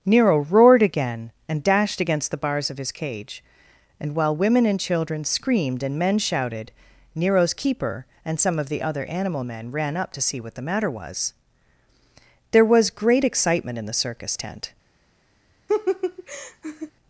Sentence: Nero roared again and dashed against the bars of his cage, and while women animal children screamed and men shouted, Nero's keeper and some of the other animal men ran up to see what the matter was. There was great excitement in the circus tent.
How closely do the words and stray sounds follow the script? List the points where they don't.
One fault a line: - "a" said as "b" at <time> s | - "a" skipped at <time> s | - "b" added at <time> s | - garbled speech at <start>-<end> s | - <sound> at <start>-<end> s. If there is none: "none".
- "animal" said as "and" at 4.7 s
- laugh at 15.7-16.9 s